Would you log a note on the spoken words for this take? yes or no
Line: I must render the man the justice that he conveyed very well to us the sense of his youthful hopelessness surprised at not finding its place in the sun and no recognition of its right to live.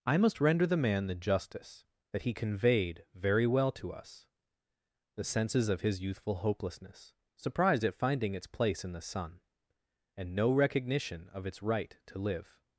yes